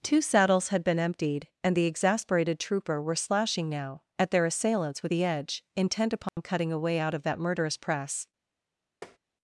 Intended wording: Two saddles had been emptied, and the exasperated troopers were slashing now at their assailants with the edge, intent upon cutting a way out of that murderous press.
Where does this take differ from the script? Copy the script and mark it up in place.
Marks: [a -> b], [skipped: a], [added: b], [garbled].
Two saddles had been emptied, and the exasperated [troopers -> trooper] were slashing now at their assailants with the edge, intent upon cutting a way out of that murderous press.